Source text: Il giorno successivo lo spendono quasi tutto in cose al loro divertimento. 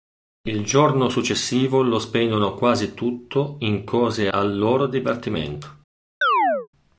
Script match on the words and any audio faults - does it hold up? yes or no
no